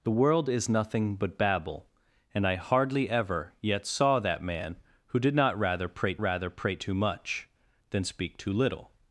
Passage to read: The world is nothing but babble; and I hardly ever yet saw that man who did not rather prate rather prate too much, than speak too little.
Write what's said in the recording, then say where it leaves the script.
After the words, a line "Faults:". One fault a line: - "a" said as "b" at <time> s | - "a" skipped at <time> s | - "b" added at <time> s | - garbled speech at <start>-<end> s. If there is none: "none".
The world is nothing but babble; and I hardly ever yet saw that man who did not rather prate rather prate too much, than speak too little.
Faults:
none